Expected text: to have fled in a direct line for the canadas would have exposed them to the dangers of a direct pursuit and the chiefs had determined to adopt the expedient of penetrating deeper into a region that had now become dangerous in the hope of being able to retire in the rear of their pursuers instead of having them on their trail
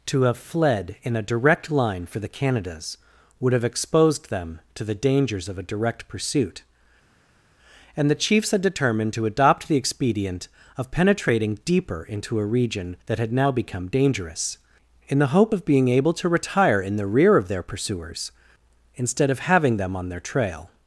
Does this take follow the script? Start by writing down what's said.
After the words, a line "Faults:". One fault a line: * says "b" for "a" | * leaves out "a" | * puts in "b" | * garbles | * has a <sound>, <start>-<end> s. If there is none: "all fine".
to have fled in a direct line for the canadas would have exposed them to the dangers of a direct pursuit and the chiefs had determined to adopt the expedient of penetrating deeper into a region that had now become dangerous in the hope of being able to retire in the rear of their pursuers instead of having them on their trail
Faults:
all fine